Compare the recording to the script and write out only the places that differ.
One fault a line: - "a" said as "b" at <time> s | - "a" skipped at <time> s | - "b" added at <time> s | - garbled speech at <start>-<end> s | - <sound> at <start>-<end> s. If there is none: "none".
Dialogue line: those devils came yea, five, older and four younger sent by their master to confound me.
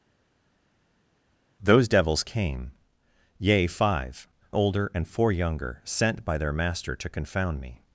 none